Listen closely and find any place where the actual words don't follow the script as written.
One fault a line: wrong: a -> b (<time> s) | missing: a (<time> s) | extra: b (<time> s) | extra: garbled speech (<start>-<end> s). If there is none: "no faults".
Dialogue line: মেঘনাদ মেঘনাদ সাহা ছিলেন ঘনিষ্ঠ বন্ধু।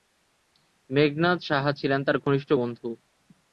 missing: মেঘনাদ (1.4 s)
extra: তার (2.0 s)